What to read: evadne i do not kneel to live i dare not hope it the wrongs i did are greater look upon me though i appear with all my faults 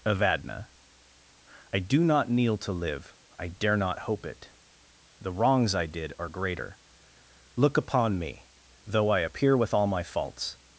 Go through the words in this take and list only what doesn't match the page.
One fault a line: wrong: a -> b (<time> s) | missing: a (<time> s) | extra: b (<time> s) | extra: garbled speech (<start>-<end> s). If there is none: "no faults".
no faults